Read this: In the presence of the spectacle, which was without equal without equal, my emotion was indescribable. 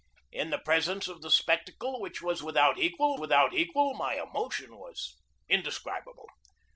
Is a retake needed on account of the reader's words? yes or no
no